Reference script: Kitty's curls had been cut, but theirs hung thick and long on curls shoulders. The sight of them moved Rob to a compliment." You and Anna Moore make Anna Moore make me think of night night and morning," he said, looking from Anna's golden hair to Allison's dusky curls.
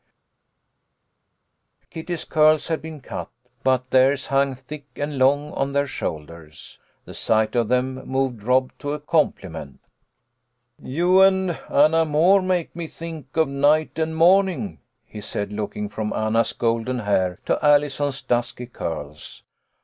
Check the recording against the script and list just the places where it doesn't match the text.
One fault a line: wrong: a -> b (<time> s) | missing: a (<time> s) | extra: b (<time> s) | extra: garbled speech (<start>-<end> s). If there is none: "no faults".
wrong: curls -> their (5.7 s)
missing: Anna Moore make (12.8 s)
missing: night (14.0 s)